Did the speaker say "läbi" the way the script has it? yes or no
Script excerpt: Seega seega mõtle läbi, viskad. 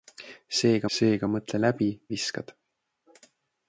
yes